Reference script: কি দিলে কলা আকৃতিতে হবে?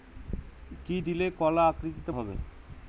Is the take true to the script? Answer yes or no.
yes